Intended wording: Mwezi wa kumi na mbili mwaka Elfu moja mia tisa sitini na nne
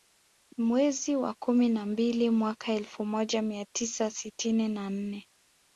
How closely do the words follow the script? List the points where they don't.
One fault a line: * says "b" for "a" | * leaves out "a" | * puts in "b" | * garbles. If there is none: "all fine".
all fine